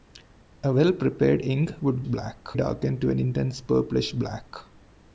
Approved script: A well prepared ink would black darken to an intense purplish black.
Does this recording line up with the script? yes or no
yes